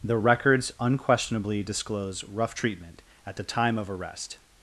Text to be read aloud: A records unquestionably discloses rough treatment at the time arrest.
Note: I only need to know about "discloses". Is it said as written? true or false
false